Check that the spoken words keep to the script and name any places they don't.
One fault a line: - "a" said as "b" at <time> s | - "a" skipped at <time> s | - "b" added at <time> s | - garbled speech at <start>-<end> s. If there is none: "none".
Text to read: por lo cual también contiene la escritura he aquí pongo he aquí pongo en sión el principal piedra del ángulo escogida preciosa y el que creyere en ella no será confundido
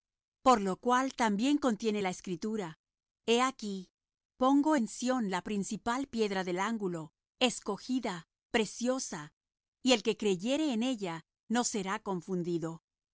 - "he aquí pongo" skipped at 4.7 s
- "el" said as "la" at 5.3 s